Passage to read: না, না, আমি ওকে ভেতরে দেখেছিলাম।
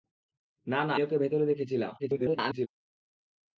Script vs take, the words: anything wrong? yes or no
yes